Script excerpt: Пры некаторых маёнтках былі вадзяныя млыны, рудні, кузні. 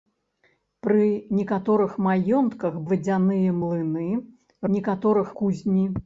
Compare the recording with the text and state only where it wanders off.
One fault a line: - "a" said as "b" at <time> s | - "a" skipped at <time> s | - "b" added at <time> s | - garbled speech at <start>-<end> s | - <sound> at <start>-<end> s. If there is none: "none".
- "былі" skipped at 2.8 s
- "рудні" said as "некаторых" at 4.8 s